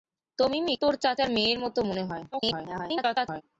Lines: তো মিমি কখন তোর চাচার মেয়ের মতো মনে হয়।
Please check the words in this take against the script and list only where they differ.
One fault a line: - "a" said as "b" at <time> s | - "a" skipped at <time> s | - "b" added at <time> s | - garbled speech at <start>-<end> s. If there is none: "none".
- "কখন" skipped at 0.7 s
- garbled speech at 2.3-3.4 s